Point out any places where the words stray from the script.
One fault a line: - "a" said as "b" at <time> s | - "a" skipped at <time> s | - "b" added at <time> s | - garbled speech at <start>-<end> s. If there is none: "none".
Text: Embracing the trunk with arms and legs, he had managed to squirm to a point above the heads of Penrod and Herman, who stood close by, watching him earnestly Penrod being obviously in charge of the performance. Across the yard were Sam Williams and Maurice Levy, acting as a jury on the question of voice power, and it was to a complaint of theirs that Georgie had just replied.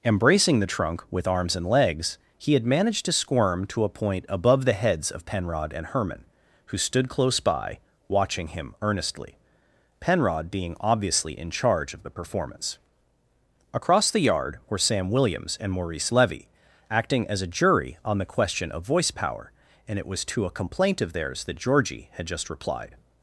none